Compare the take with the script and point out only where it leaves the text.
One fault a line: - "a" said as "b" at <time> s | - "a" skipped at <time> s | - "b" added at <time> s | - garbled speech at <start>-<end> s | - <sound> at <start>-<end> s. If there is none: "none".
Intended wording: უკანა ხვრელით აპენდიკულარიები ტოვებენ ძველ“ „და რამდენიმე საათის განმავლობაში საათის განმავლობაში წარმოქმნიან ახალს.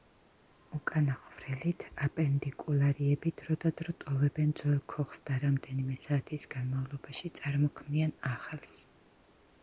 - "დროდადრო" added at 3.4 s
- "ქოხს" added at 4.9 s
- "საათის განმავლობაში" skipped at 7.3 s